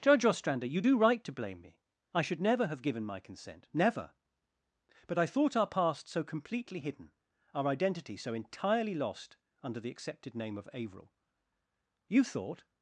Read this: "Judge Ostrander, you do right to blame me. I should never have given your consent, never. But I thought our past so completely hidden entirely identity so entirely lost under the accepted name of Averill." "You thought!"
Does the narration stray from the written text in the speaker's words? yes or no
yes